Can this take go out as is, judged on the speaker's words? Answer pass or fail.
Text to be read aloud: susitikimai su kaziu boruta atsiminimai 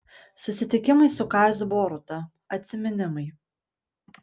pass